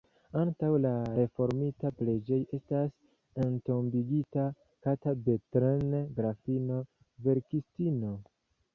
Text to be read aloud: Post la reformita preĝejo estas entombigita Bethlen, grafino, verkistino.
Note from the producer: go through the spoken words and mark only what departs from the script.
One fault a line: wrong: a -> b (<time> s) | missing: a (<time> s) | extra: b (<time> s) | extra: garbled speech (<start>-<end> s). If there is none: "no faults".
wrong: Post -> Antaŭ (0.4 s)
extra: Kata (4.9 s)